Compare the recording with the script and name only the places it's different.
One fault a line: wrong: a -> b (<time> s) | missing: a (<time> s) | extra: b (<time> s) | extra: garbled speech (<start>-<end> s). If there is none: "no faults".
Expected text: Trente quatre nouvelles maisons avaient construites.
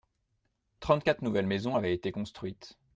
extra: été (1.9 s)